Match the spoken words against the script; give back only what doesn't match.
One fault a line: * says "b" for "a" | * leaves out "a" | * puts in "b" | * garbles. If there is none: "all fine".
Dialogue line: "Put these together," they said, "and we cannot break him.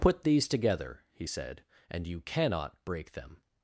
* says "he" for "they"
* says "you" for "we"
* says "them" for "him"